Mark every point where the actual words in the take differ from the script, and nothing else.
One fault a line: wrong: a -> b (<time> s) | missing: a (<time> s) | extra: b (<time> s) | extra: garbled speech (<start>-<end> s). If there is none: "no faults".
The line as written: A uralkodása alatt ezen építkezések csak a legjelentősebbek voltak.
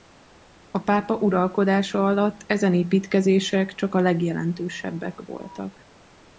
extra: pápa (0.8 s)